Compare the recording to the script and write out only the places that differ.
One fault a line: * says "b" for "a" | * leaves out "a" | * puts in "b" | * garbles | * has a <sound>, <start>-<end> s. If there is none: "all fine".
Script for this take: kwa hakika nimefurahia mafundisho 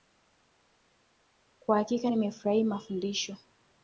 all fine